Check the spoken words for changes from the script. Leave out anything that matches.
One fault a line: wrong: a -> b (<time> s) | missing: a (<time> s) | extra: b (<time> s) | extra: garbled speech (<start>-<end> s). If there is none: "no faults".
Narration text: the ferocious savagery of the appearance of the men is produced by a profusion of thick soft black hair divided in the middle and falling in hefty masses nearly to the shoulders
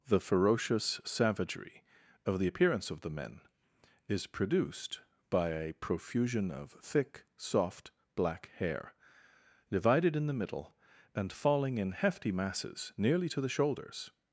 no faults